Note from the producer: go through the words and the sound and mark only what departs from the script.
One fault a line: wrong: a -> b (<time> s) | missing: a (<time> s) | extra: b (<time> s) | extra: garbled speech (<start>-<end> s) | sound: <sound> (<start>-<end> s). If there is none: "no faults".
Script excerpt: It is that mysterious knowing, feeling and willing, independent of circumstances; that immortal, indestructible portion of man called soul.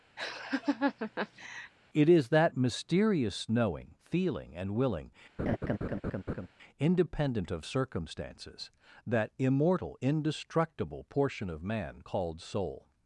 sound: laugh (0.2-1.7 s)
sound: laugh (5.4-6.5 s)